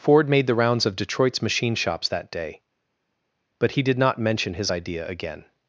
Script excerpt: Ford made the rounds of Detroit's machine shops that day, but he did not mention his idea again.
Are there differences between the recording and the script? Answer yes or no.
no